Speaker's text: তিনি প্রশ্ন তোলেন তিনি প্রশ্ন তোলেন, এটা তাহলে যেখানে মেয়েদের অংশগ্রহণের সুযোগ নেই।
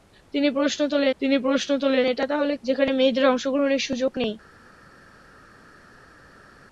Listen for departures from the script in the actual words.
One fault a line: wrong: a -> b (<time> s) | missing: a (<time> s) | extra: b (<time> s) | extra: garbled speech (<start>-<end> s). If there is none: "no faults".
no faults